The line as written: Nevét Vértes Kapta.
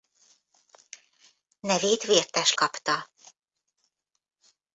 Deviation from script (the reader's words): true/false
false